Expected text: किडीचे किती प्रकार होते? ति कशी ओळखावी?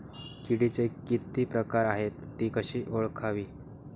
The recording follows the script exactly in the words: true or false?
false